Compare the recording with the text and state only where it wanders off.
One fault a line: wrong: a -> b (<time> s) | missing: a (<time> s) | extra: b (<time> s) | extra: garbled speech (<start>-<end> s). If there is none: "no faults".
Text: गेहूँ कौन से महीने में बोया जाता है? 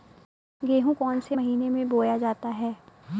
no faults